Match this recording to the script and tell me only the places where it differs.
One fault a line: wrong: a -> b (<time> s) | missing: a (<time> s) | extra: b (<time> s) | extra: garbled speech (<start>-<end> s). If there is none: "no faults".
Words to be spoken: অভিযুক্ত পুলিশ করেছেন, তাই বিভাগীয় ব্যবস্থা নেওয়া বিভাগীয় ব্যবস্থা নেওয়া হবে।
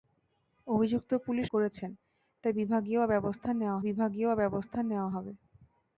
no faults